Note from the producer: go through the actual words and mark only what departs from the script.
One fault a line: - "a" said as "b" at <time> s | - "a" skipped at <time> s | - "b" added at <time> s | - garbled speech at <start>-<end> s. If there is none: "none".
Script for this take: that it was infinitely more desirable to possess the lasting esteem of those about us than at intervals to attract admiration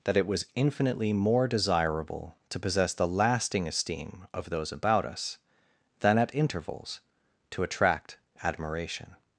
none